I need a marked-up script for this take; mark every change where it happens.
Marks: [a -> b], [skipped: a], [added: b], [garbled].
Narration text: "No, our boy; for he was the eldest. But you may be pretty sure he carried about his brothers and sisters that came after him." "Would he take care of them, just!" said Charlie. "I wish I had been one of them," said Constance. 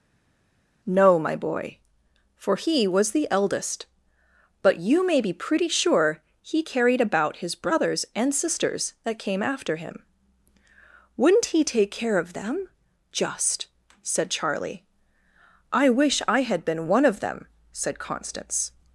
"No, [our -> my] boy; for he was the eldest. But you may be pretty sure he carried about his brothers and sisters that came after him." ["Would -> Wouldn't] he take care of them, just!" said Charlie. "I wish I had been one of them," said Constance.